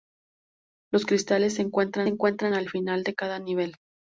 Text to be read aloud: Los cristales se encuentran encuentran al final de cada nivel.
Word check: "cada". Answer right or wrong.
right